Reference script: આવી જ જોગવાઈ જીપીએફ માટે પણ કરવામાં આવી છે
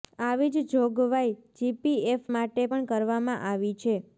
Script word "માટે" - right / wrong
right